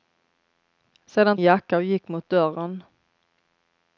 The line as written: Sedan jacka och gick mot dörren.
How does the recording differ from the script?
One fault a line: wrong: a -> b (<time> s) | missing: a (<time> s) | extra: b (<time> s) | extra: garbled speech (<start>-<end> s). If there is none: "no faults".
no faults